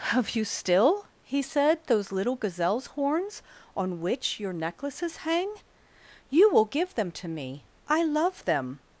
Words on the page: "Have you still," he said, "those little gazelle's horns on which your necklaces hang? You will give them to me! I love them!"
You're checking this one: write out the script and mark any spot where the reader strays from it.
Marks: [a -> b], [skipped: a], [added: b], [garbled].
"Have you still," he said, "those little gazelle's horns on which your necklaces hang? You will give them to me! I love them!"